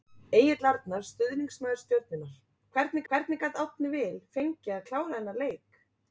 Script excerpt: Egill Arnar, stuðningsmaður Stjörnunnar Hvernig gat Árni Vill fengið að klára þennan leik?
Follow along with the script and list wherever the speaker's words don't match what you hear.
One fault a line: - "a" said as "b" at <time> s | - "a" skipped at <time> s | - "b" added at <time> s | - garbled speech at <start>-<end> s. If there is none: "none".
- "Hvernig" added at 3.1 s